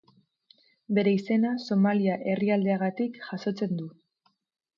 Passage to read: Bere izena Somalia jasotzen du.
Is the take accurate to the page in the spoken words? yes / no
no